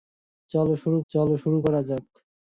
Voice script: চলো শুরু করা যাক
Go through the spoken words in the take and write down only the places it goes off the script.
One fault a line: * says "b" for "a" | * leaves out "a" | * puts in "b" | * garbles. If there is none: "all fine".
* puts in "চলো শুরু"